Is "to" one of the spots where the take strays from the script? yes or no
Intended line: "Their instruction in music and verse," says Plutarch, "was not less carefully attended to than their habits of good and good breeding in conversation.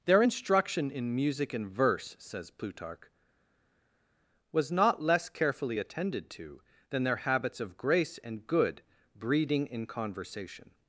no